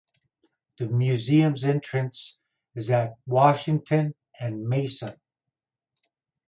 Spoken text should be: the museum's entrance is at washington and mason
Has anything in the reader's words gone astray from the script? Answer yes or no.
no